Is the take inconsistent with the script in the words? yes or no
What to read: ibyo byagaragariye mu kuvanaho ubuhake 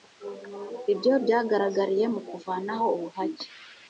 no